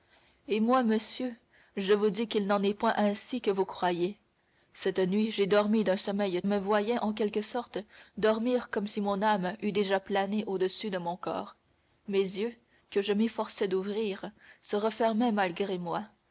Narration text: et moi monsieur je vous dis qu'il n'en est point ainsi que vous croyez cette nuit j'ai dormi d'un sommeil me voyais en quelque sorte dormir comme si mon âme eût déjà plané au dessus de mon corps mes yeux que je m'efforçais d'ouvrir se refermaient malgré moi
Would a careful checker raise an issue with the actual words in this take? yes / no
no